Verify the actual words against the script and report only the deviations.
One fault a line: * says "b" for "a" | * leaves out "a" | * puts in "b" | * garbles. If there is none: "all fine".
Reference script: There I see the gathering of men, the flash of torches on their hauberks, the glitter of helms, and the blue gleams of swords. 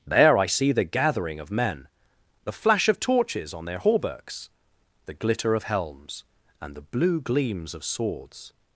all fine